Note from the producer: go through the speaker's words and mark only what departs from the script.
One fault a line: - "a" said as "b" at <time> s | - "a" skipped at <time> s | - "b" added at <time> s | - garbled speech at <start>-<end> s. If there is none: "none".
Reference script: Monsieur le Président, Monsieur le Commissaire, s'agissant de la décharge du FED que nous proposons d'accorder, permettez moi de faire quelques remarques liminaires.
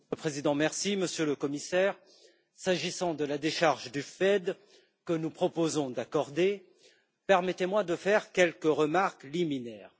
none